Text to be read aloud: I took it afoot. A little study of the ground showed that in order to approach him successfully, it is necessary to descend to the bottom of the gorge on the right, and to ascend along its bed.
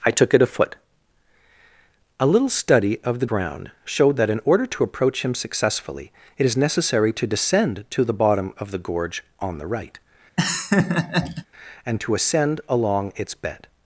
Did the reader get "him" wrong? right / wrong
right